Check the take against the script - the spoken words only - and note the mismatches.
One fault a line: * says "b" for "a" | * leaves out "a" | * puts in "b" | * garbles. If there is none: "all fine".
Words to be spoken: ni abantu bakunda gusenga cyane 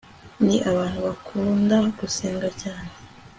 all fine